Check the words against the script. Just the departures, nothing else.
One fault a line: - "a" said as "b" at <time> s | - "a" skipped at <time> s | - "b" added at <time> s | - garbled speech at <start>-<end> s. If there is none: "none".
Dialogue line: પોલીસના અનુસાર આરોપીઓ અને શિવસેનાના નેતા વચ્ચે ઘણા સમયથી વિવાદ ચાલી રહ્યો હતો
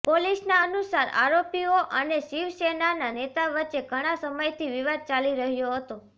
none